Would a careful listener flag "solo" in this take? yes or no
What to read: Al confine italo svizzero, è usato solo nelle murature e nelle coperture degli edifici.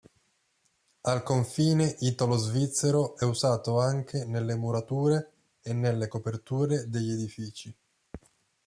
yes